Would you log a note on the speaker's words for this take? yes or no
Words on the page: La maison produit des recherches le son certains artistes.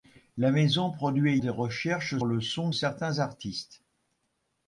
no